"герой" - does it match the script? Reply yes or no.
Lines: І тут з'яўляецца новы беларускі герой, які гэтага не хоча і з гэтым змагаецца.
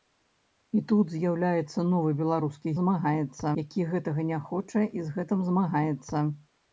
no